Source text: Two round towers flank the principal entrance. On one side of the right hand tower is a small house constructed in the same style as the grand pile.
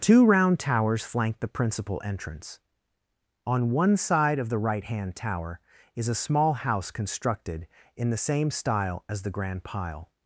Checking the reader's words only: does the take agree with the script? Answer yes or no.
yes